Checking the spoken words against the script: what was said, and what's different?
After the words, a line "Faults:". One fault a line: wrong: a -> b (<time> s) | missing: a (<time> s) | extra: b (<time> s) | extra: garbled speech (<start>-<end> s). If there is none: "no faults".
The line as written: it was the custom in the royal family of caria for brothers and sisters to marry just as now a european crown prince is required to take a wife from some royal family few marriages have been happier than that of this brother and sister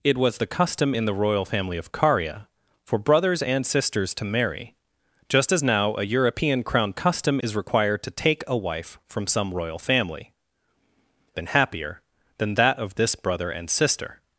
it was the custom in the royal family of caria for brothers and sisters to marry just as now a european crown custom is required to take a wife from some royal family been happier than that of this brother and sister
Faults:
wrong: prince -> custom (6.9 s)
missing: few marriages have (10.3 s)